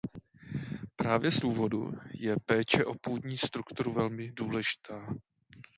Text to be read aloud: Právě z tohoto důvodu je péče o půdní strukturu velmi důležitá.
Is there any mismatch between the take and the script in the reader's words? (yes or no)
yes